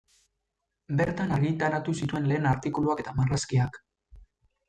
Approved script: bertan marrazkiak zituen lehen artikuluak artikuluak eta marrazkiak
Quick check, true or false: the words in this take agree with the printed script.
false